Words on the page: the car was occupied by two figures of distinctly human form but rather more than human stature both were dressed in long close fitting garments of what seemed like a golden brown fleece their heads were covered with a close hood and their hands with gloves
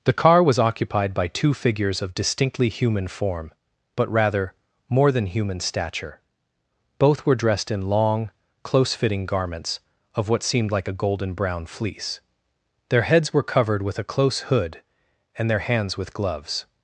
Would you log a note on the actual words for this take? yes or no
no